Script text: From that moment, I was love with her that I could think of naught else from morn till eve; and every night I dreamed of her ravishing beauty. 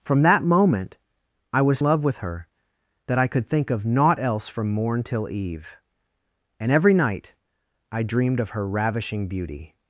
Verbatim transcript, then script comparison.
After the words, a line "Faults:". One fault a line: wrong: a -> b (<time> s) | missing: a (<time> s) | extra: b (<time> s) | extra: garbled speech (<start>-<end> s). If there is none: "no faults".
From that moment, I was love with her that I could think of naught else from morn till eve; and every night I dreamed of her ravishing beauty.
Faults:
no faults